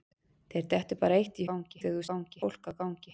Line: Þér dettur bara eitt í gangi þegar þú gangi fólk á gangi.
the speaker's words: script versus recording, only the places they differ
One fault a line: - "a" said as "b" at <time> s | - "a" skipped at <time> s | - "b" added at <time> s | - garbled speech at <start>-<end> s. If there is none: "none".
none